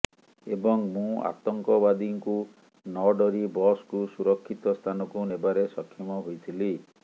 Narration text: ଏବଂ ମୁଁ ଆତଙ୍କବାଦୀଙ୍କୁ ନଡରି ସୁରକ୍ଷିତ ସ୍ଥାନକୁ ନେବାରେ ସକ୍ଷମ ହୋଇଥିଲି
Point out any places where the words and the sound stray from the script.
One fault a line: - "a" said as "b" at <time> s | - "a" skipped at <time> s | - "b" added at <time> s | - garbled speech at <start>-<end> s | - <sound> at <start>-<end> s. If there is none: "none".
- "ବସକୁ" added at 3.5 s